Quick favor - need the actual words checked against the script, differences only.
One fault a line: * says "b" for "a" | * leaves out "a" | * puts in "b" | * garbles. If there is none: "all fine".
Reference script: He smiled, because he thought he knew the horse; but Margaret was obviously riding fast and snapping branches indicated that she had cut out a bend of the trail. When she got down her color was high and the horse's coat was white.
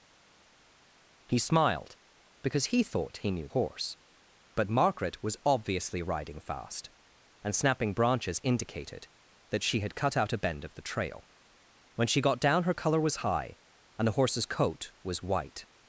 * leaves out "the"